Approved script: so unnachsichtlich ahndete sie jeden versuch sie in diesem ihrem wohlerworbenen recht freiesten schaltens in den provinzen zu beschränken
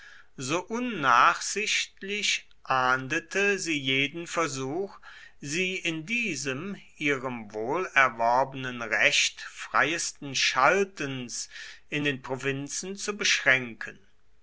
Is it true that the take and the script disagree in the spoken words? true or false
false